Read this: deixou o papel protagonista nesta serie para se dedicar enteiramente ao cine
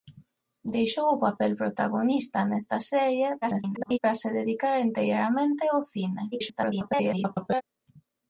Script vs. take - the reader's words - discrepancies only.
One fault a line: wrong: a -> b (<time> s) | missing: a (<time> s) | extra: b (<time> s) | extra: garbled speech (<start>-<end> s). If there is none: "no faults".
extra: garbled speech (3.4-4.0 s)
extra: garbled speech (6.3-7.6 s)